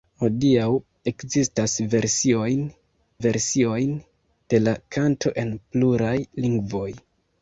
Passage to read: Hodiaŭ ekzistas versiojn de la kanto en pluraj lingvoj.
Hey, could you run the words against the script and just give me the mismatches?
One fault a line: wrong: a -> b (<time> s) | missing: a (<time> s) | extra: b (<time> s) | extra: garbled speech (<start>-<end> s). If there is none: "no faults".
extra: versiojn (3.2 s)